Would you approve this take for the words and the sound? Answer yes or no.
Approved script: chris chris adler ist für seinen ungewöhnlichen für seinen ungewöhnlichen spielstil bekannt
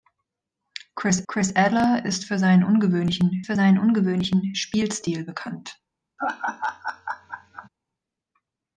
no